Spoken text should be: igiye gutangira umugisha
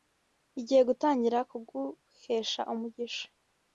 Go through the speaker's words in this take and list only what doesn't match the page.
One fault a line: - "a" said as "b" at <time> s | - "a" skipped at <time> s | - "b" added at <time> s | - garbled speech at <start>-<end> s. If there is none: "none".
- "kuguhesha" added at 1.5 s